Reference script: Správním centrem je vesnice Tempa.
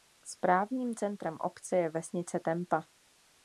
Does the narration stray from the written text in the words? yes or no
yes